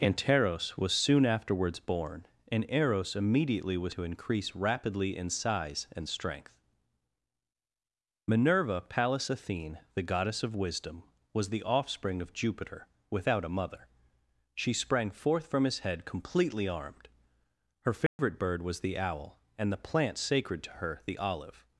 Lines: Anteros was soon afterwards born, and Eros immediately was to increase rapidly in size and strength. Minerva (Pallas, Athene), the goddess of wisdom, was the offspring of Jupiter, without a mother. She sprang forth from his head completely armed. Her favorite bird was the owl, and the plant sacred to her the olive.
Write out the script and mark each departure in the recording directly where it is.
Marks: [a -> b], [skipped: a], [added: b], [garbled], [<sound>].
Anteros was soon afterwards born, and Eros immediately was to increase rapidly in size and strength. Minerva (Pallas, Athene), the goddess of wisdom, was the offspring of Jupiter, without a mother. She sprang forth from his head completely armed. Her favorite [dropout] bird was the owl, and the plant sacred to her the olive.